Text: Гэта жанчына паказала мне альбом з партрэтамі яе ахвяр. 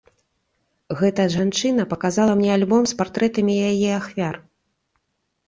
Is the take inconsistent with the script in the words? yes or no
no